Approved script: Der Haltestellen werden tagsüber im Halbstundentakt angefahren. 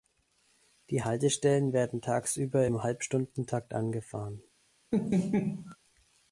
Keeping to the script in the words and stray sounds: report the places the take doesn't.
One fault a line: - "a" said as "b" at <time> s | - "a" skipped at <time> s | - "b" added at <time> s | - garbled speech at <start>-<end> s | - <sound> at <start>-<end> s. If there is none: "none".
- "Der" said as "Die" at 0.9 s
- laugh at 4.9-5.8 s